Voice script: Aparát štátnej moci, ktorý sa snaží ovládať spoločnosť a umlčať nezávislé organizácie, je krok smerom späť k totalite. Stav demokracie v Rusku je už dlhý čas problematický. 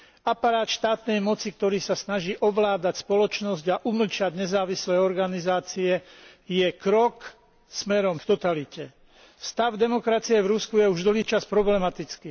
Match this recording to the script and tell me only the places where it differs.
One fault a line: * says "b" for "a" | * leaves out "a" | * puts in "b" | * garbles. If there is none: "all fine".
* leaves out "späť"